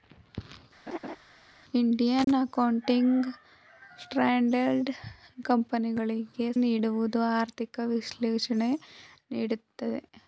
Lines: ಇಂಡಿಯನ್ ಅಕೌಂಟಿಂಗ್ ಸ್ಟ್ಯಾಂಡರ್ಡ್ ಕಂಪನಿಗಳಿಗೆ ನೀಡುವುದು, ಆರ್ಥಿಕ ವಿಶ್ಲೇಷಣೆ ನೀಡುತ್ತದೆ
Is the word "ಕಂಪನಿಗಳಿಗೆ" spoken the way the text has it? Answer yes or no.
yes